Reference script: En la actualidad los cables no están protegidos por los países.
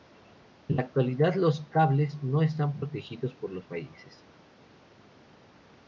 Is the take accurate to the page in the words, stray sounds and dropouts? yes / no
yes